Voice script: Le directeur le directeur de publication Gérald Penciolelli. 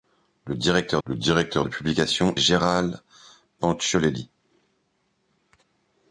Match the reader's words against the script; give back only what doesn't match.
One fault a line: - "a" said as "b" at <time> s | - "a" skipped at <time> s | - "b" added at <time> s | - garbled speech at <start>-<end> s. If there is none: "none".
none